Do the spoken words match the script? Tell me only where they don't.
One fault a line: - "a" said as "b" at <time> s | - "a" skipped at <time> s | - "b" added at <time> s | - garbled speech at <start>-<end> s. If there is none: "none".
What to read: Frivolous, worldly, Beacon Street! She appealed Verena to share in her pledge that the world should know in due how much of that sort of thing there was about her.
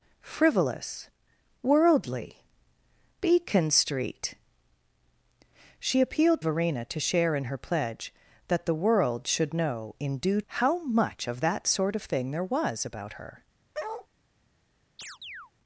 none